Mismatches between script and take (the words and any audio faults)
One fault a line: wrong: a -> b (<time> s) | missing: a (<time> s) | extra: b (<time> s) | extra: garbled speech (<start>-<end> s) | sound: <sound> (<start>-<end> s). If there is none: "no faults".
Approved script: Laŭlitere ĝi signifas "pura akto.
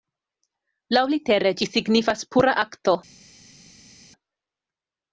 no faults